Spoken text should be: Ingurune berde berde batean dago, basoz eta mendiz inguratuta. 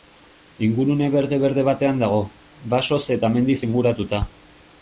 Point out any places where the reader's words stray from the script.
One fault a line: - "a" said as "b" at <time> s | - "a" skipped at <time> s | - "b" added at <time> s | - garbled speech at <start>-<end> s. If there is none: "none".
none